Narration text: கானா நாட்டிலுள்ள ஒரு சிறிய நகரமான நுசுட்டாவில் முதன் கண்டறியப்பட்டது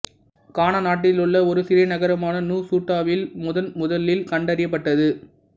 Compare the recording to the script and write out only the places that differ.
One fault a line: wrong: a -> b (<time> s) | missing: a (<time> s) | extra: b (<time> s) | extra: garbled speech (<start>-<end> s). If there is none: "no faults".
extra: முதலில் (3.8 s)